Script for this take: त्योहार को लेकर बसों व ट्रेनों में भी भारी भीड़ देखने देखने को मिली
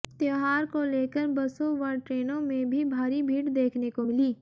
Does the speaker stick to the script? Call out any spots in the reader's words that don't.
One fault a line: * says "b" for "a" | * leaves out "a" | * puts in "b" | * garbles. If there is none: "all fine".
* leaves out "देखने"